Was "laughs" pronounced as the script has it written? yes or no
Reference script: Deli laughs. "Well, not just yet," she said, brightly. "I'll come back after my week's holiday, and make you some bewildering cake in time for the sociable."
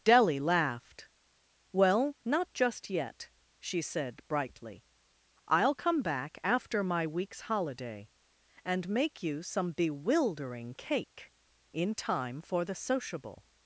no